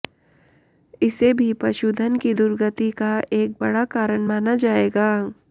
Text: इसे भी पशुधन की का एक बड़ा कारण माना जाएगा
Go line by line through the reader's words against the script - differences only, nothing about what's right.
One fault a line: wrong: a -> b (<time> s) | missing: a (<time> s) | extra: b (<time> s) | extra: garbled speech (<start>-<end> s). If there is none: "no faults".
extra: दुर्गति (2.3 s)